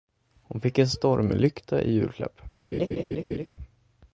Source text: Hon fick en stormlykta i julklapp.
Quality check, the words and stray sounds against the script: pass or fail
fail